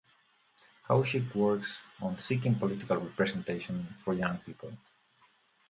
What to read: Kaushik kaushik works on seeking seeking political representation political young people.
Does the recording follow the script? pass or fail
fail